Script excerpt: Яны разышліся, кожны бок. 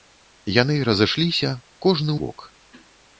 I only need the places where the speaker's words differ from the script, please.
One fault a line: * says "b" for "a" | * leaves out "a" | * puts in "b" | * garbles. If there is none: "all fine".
all fine